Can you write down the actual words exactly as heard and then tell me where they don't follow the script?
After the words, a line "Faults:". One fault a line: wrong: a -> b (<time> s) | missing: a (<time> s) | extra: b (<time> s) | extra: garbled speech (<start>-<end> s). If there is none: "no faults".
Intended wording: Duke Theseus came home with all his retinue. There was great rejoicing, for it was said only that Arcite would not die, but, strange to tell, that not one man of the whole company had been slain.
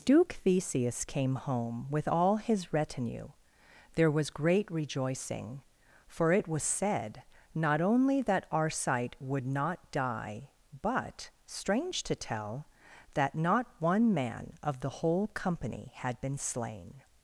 Duke Theseus came home with all his retinue. There was great rejoicing, for it was said not only that Arcite would not die, but, strange to tell, that not one man of the whole company had been slain.
Faults:
extra: not (7.5 s)